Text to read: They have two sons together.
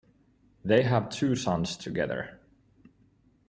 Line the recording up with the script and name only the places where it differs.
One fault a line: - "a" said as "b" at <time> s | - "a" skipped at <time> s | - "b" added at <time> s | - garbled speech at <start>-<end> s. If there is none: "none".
none